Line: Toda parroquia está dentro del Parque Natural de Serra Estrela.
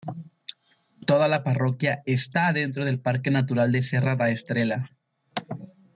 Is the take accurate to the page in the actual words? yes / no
no